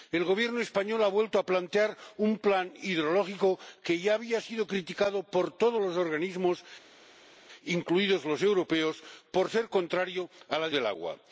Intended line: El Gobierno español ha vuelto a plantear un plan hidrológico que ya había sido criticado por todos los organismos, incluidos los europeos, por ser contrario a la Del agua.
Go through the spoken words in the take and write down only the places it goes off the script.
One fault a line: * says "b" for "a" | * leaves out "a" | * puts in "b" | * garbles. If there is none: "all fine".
all fine